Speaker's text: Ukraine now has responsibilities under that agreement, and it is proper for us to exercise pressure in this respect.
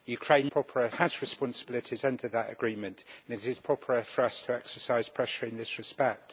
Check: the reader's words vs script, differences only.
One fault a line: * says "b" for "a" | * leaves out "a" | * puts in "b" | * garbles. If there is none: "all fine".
* says "proper" for "now"